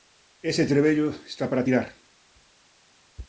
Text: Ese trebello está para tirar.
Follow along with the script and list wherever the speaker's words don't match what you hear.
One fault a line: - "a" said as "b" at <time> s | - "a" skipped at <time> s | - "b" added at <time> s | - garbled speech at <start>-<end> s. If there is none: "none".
none